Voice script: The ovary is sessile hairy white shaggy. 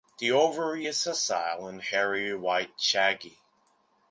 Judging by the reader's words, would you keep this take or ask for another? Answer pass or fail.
fail